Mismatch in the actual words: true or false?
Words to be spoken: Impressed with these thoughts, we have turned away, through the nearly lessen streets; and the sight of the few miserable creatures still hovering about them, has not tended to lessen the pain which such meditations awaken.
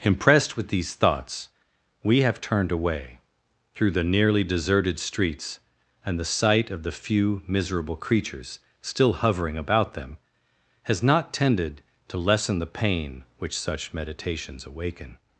true